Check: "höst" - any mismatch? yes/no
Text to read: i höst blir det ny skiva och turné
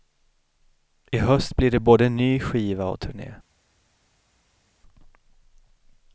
no